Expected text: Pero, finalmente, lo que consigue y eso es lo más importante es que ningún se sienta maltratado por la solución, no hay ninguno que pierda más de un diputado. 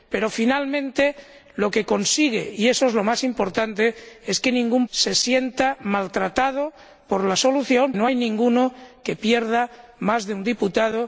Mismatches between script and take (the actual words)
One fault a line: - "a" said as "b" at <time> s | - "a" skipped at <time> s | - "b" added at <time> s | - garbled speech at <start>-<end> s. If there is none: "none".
none